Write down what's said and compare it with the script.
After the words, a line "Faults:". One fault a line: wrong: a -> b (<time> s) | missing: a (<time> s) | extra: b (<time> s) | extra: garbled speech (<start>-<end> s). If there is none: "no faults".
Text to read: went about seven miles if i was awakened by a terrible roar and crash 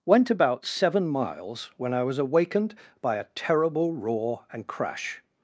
went about seven miles when i was awakened by a terrible roar and crash
Faults:
wrong: if -> when (1.8 s)